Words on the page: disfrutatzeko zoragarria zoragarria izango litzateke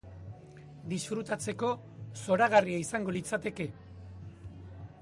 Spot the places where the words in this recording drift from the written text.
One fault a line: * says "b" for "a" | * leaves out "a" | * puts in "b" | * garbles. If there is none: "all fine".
* leaves out "zoragarria"